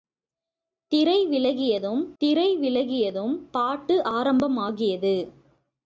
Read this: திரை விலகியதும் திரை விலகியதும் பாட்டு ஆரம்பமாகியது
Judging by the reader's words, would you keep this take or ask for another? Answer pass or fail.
pass